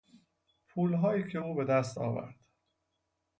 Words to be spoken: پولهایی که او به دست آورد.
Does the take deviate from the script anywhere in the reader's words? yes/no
no